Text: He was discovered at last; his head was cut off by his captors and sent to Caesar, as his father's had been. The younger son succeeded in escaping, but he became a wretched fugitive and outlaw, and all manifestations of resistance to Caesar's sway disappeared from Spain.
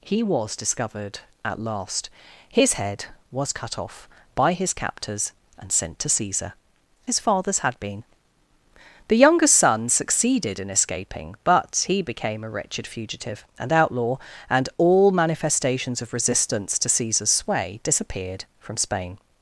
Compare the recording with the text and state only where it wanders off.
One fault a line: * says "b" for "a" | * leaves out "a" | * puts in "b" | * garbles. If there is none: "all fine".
* leaves out "as"